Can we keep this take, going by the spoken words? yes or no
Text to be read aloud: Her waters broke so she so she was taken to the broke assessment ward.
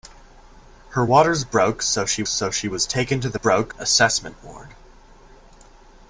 yes